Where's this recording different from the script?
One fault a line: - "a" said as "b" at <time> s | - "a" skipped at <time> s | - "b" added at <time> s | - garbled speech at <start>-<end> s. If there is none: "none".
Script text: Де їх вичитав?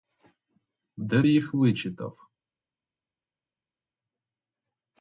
none